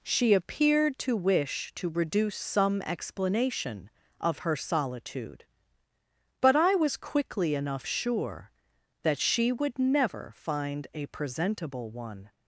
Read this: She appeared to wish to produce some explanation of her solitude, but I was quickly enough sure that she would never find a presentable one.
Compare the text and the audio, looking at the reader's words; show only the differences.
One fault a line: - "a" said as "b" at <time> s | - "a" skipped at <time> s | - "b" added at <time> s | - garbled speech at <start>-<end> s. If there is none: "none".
- "produce" said as "reduce" at 1.9 s